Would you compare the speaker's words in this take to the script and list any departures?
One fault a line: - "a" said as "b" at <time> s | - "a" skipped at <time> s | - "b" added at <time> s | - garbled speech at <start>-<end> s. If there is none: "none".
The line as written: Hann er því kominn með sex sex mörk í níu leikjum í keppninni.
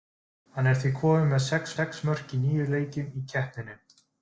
none